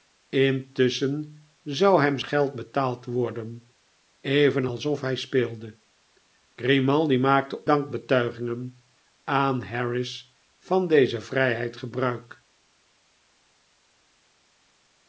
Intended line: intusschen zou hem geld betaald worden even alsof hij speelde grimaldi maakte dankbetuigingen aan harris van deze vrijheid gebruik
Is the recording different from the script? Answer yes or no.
no